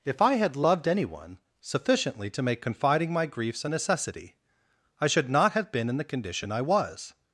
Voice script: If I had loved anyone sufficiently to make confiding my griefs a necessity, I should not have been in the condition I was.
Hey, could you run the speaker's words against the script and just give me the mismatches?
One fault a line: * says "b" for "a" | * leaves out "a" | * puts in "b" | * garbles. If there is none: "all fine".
all fine